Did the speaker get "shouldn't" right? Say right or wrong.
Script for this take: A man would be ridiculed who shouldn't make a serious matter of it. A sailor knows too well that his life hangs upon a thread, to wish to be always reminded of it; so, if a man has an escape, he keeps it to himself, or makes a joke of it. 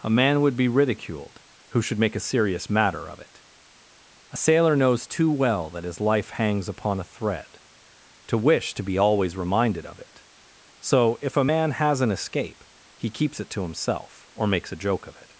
wrong